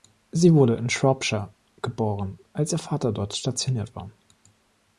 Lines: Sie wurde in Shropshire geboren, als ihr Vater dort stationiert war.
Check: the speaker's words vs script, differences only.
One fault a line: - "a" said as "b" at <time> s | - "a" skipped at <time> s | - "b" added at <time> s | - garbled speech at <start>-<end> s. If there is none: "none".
none